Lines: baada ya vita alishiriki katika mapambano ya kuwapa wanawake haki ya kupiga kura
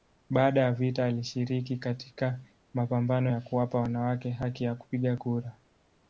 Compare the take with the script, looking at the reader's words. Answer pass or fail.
pass